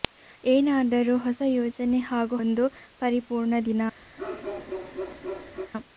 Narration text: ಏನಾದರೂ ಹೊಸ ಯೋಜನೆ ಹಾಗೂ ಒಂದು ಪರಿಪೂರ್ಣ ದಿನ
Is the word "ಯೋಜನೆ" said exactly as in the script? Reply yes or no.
yes